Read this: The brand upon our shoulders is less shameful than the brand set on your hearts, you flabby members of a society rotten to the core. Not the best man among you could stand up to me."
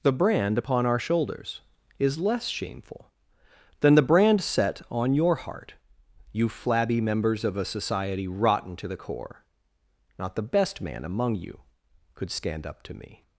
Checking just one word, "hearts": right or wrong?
wrong